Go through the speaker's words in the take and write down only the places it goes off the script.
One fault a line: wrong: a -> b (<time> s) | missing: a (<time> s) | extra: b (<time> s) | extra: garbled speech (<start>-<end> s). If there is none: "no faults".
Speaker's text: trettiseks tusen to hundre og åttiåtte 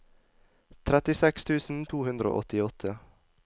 no faults